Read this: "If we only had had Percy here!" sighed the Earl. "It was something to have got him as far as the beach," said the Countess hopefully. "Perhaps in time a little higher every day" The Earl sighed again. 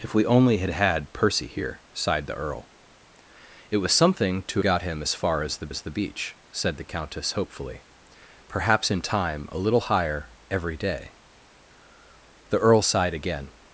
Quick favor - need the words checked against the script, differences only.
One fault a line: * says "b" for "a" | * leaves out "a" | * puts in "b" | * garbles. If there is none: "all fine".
* leaves out "have"
* puts in "as the"